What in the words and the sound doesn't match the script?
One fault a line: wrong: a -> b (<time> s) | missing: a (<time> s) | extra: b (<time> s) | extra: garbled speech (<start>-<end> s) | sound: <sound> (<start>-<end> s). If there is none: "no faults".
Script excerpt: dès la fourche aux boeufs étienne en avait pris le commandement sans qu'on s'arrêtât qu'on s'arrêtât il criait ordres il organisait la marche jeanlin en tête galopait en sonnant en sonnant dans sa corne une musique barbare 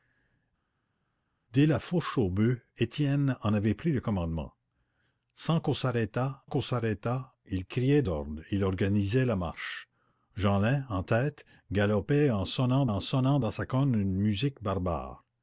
no faults